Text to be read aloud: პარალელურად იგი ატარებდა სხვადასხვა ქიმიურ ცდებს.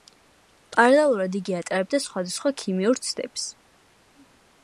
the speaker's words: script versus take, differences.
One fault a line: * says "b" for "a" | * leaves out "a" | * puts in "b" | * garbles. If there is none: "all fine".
all fine